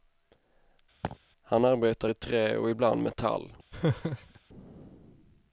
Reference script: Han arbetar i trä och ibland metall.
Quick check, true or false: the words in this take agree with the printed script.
true